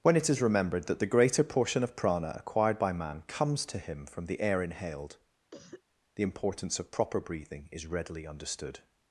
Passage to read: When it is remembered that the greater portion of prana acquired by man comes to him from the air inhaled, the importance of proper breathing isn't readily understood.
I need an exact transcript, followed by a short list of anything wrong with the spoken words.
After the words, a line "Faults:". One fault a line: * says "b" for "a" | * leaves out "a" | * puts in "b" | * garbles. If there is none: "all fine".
When it is remembered that the greater portion of prana acquired by man comes to him from the air inhaled, the importance of proper breathing is readily understood.
Faults:
* says "is" for "isn't"